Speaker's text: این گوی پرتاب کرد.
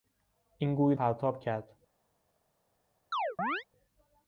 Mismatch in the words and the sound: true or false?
true